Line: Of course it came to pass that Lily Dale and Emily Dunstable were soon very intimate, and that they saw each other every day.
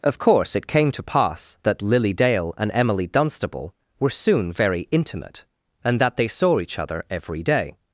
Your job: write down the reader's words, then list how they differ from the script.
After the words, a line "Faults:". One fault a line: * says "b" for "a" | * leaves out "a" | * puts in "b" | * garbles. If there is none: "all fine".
Of course it came to pass that Lily Dale and Emily Dunstable were soon very intimate, and that they saw each other every day.
Faults:
all fine